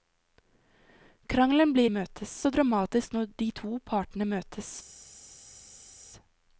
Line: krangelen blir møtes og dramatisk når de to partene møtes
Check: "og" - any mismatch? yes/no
no